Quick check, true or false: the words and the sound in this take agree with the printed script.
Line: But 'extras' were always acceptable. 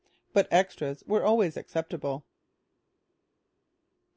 true